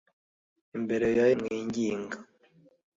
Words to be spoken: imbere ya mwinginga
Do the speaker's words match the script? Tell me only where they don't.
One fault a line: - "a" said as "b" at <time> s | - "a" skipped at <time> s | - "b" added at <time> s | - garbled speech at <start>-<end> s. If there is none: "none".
none